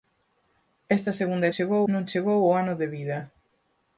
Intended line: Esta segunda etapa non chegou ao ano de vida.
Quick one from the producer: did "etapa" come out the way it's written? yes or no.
no